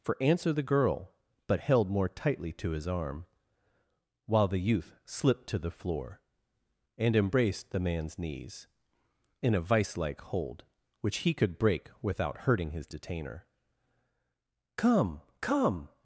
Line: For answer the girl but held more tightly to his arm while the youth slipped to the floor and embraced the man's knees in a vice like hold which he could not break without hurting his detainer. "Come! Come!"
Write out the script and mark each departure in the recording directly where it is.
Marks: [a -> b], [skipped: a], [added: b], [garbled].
For answer the girl but held more tightly to his arm while the youth slipped to the floor and embraced the man's knees in a vice like hold which he could [skipped: not] break without hurting his detainer. "Come! Come!"